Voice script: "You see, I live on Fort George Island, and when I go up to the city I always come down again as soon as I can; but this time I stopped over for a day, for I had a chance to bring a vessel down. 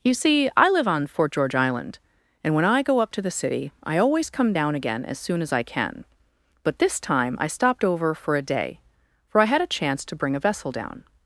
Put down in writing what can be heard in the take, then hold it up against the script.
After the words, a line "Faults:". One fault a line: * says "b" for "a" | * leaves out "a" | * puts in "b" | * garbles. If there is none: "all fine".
"You see, I live on Fort George Island, and when I go up to the city I always come down again as soon as I can; but this time I stopped over for a day, for I had a chance to bring a vessel down.
Faults:
all fine